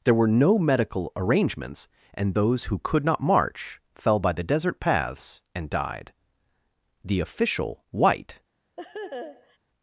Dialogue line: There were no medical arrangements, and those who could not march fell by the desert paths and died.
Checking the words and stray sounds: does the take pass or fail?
fail